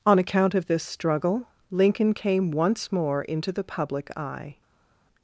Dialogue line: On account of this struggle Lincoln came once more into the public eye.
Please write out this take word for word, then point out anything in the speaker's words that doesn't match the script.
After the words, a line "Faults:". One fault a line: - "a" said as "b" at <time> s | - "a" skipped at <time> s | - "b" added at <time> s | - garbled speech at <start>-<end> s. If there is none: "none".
On account of this struggle Lincoln came once more into the public eye.
Faults:
none